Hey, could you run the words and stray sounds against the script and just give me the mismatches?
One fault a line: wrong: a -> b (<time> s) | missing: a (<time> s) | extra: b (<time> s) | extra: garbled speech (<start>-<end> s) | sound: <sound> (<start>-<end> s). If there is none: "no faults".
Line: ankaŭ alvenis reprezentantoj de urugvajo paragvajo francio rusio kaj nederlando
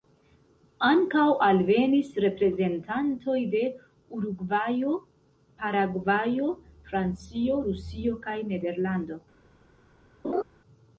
sound: laugh (10.2-10.4 s)